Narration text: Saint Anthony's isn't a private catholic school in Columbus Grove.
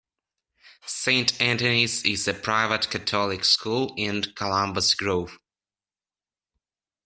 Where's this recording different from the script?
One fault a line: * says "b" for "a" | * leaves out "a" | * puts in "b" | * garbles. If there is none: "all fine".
* says "is" for "isn't"